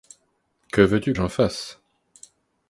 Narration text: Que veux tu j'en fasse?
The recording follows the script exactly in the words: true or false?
true